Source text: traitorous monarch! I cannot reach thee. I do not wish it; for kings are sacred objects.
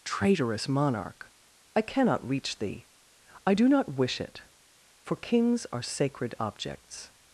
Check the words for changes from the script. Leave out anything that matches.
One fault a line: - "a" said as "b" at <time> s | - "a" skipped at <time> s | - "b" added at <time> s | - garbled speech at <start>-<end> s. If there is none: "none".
none